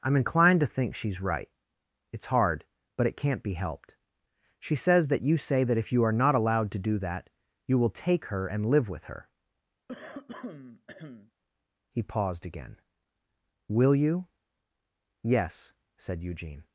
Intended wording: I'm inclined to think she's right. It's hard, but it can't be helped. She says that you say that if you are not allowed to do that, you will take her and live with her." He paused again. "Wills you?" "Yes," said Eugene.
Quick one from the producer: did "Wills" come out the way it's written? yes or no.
no